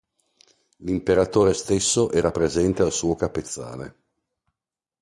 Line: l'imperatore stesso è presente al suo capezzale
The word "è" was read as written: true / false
false